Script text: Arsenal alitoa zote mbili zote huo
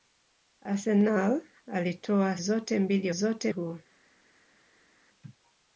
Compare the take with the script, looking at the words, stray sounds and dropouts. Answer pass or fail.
pass